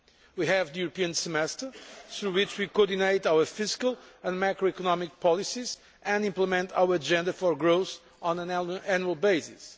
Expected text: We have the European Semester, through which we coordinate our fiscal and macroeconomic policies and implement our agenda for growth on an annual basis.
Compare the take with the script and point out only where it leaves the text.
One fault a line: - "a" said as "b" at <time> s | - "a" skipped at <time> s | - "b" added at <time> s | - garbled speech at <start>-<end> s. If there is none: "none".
none